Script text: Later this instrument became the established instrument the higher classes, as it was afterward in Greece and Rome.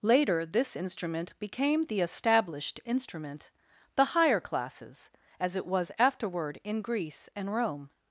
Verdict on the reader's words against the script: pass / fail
pass